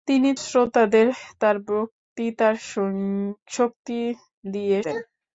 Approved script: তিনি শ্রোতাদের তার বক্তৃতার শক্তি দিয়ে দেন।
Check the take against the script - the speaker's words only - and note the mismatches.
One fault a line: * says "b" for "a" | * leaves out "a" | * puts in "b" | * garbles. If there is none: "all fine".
all fine